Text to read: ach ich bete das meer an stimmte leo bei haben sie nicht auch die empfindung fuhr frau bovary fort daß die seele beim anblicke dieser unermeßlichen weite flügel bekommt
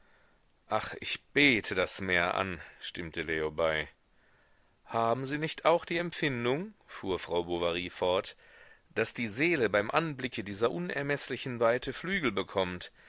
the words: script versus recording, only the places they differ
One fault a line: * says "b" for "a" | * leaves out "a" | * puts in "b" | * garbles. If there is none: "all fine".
all fine